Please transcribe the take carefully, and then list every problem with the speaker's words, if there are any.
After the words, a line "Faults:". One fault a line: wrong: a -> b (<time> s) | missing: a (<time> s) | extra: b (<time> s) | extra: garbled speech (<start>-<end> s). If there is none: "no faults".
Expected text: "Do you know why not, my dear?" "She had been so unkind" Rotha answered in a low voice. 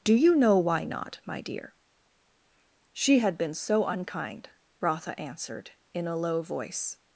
"Do you know why not, my dear?" "She had been so unkind" Rotha answered in a low voice.
Faults:
no faults